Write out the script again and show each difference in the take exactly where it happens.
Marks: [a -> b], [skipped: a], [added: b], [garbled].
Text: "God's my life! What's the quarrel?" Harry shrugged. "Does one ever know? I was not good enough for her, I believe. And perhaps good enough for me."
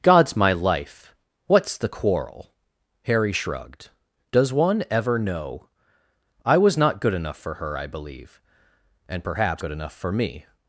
"God's my life! What's the quarrel?" Harry shrugged. "Does one ever know? I was not good enough for her, I believe. And perhaps good enough for me."